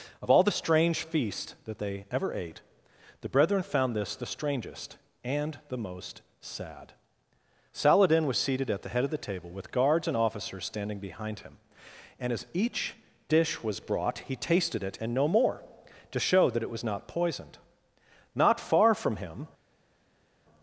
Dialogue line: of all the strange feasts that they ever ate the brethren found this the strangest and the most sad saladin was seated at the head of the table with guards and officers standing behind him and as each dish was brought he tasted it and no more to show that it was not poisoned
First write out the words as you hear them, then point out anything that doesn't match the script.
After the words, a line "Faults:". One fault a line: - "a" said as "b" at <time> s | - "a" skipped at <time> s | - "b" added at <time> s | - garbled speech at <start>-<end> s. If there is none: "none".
of all the strange feasts that they ever ate the brethren found this the strangest and the most sad saladin was seated at the head of the table with guards and officers standing behind him and as each dish was brought he tasted it and no more to show that it was not poisoned not far from him
Faults:
- "not far from him" added at 18.4 s